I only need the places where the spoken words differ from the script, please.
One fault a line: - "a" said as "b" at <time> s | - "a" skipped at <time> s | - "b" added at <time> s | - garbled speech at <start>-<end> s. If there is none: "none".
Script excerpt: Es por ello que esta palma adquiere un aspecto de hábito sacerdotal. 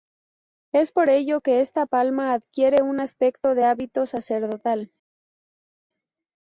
none